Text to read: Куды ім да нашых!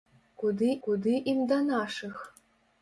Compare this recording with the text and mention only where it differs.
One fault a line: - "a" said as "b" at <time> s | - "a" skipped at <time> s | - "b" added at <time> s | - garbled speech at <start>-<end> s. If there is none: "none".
- "куды" added at 0.9 s